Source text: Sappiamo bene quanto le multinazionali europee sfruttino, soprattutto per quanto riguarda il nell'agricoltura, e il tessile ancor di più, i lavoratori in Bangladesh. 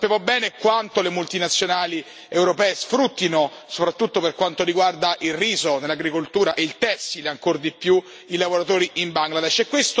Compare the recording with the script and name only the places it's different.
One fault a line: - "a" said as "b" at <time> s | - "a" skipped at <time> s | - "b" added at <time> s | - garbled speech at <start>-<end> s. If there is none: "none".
- "riso" added at 5.3 s